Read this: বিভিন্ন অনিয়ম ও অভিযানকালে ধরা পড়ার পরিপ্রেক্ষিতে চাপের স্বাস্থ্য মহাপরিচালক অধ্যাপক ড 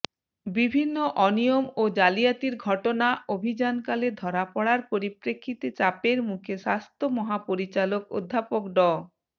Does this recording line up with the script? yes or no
no